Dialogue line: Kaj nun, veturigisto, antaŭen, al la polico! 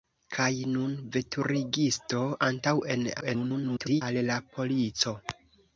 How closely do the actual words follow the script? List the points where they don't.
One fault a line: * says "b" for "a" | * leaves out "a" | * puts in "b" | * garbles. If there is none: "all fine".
* garbles